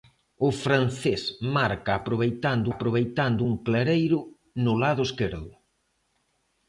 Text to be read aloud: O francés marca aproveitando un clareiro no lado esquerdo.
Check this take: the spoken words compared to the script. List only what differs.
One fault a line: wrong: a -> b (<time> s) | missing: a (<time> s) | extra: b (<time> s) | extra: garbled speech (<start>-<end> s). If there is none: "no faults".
extra: aproveitando (2.7 s)